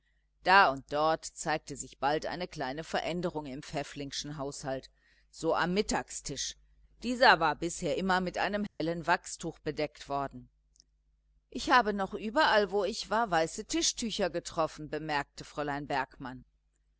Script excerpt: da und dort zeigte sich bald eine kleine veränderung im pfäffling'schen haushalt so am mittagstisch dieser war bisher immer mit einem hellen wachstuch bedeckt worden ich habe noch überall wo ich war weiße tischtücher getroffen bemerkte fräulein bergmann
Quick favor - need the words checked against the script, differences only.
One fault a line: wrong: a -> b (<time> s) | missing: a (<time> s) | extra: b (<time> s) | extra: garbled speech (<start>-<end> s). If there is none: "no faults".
no faults